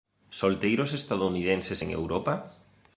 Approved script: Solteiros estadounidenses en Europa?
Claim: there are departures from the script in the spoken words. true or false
false